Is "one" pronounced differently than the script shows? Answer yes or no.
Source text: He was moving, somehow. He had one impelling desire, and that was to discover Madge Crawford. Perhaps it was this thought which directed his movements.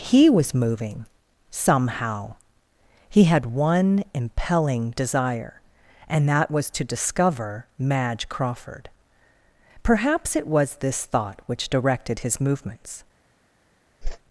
no